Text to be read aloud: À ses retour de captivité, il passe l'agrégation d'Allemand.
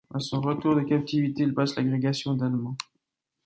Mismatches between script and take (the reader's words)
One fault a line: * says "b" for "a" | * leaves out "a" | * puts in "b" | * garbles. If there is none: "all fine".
* says "son" for "ses"